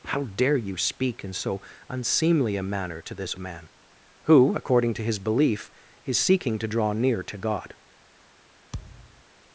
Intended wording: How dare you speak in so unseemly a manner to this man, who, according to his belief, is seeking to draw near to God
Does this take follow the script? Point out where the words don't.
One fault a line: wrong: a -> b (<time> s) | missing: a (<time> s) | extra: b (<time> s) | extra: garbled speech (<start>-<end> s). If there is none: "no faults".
no faults